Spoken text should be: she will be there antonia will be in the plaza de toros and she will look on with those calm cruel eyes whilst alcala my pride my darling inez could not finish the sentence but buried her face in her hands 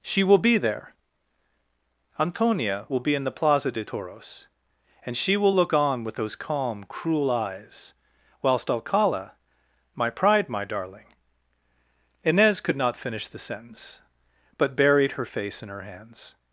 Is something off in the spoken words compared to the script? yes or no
no